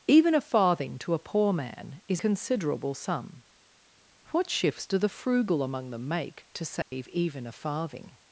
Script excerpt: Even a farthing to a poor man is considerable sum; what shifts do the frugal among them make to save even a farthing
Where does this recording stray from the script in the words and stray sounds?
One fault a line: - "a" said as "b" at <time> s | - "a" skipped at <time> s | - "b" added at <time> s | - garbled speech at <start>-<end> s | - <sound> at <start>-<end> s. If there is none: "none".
- dropout at 6.8-6.9 s